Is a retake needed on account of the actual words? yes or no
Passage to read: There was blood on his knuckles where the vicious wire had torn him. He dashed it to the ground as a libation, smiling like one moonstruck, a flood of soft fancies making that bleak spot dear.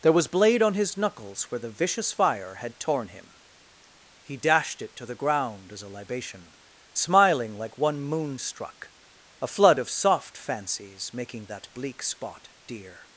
yes